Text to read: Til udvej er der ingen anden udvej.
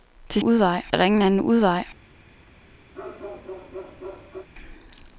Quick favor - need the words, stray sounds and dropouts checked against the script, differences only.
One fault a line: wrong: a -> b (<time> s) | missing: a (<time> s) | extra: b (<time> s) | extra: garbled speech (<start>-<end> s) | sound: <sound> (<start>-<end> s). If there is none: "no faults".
sound: bark (2.9-4.5 s)